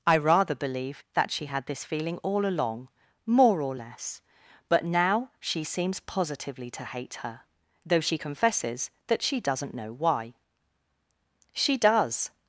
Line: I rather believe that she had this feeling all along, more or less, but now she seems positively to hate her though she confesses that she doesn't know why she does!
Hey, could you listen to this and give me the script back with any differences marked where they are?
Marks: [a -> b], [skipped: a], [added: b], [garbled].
I rather believe that she had this feeling all along, more or less, but now she seems positively to hate her though she confesses that she doesn't know why she does!